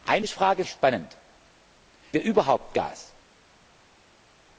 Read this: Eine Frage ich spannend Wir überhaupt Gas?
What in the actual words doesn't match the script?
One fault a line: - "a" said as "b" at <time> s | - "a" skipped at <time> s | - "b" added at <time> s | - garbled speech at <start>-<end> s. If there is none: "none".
none